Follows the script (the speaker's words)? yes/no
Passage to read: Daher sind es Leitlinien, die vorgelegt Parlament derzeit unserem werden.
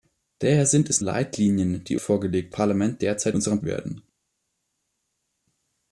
yes